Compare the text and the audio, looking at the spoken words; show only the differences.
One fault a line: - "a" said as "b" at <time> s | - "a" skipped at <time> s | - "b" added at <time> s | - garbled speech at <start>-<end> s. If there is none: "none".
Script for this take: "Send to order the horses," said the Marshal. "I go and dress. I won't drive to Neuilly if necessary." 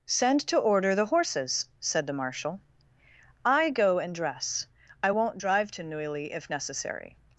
none